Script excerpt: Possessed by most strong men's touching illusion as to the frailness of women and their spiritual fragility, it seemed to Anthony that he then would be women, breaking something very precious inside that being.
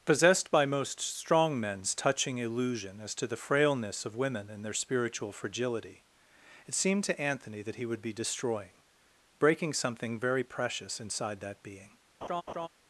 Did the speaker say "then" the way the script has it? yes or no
no